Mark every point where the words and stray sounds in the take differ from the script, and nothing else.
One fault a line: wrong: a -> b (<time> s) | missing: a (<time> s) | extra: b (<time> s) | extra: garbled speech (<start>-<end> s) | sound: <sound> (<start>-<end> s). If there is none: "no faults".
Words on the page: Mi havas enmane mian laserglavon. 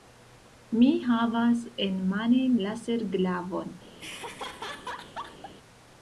missing: mian (2.5 s)
sound: laugh (4.0-5.5 s)